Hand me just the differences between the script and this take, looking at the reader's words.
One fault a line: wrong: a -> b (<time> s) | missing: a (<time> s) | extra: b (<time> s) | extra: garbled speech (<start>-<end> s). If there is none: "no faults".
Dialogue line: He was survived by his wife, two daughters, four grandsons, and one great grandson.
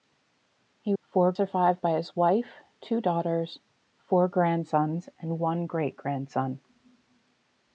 wrong: was -> four (1.0 s)